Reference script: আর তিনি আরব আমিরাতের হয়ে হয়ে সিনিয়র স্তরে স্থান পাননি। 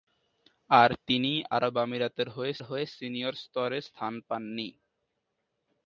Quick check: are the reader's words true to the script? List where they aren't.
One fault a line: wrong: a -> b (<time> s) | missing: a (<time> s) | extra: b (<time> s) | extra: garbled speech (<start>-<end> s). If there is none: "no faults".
no faults